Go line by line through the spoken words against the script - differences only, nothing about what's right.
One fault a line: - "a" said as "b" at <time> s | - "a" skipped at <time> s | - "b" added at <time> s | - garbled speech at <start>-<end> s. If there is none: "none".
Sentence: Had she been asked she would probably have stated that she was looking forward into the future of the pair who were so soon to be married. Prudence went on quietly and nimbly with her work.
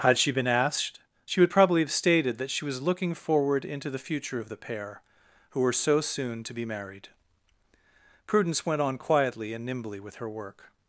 none